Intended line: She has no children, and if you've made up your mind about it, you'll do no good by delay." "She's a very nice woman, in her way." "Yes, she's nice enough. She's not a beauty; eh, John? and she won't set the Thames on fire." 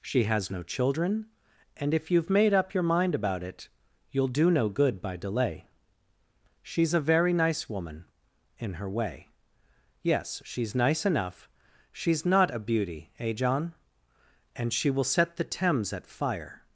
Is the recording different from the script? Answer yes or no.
yes